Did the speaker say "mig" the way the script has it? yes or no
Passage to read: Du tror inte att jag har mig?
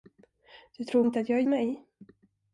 yes